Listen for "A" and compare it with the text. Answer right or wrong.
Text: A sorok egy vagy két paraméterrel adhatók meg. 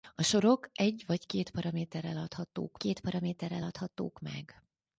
right